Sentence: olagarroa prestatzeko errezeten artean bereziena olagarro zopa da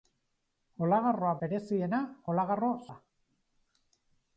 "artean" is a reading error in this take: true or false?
true